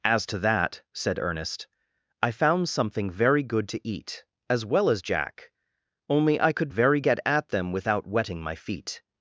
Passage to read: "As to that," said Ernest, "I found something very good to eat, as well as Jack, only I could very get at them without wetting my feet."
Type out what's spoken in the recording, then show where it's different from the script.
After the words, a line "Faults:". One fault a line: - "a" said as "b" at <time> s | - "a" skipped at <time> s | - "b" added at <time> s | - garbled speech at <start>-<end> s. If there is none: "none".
"As to that," said Ernest, "I found something very good to eat, as well as Jack, only I could very get at them without wetting my feet."
Faults:
none